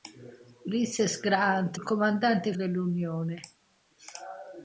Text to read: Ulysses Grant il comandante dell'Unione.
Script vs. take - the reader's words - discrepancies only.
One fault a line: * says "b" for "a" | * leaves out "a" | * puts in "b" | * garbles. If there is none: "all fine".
all fine